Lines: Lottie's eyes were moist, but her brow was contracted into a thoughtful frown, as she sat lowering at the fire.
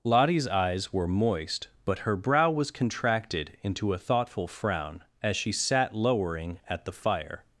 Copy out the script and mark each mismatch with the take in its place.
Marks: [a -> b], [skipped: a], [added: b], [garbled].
Lottie's eyes were moist, but her brow was contracted into a thoughtful frown, as she sat lowering at the fire.